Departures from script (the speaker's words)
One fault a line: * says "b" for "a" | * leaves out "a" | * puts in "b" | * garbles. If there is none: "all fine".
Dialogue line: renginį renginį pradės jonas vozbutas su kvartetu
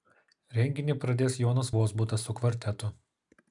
* leaves out "renginį"